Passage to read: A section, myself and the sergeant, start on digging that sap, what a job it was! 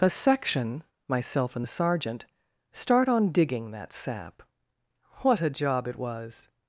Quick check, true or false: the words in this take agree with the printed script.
true